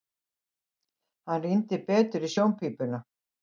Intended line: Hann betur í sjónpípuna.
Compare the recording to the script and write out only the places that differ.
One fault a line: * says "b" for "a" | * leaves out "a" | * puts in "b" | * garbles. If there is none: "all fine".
* puts in "rýndi"